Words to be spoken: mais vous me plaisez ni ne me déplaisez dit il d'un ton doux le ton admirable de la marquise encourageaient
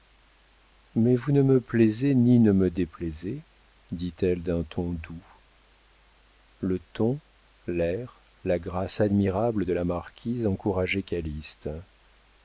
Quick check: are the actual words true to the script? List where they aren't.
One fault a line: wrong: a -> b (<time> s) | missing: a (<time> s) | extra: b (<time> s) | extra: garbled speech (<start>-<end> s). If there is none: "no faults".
extra: ne (1.3 s)
wrong: il -> elle (4.2 s)
extra: l'air la grâce (7.7 s)